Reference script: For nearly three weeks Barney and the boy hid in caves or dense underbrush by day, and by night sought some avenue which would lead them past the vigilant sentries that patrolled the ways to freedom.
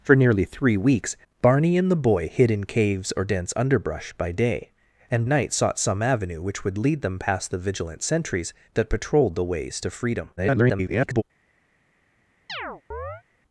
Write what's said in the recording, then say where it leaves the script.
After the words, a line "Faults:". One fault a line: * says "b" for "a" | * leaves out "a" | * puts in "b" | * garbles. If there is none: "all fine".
For nearly three weeks Barney and the boy hid in caves or dense underbrush by day, and night sought some avenue which would lead them past the vigilant sentries that patrolled the ways to freedom. [garbled]
Faults:
* leaves out "by"
* garbles